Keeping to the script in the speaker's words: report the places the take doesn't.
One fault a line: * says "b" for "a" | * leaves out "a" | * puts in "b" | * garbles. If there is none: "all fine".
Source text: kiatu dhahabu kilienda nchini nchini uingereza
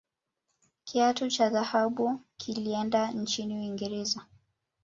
* puts in "cha"
* leaves out "nchini"